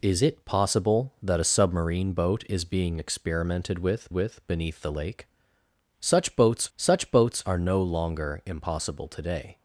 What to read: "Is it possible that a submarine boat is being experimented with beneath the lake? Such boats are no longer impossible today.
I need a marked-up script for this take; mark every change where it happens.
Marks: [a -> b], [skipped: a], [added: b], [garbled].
"Is it possible that a submarine boat is being experimented with [added: with] beneath the lake? Such boats [added: such boats] are no longer impossible today.